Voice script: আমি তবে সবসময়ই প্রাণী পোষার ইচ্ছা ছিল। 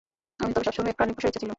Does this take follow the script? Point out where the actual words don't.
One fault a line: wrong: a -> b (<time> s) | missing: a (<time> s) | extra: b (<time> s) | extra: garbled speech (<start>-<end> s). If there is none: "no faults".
no faults